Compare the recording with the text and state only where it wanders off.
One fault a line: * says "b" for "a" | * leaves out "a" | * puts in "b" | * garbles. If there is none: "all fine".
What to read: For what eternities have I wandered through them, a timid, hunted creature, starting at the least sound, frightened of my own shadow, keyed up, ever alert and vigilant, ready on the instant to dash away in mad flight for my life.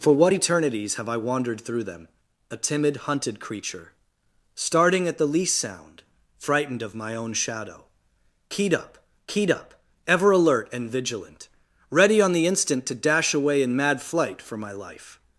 * puts in "keyed up"